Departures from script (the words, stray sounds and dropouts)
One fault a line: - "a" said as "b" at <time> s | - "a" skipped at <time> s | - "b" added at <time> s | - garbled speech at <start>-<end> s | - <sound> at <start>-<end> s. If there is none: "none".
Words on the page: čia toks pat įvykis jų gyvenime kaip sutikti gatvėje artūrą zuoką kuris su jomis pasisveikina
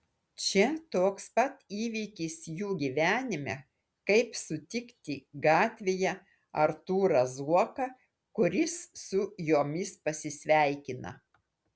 none